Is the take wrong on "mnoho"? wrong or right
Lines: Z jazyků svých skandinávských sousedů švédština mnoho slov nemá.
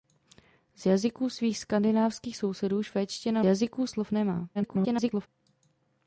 wrong